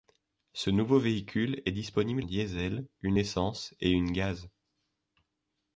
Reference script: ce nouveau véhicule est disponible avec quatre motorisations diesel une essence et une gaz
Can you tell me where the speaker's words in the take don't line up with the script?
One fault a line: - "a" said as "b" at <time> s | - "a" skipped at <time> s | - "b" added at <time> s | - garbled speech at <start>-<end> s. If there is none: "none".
- "avec quatre motorisations" skipped at 2.2 s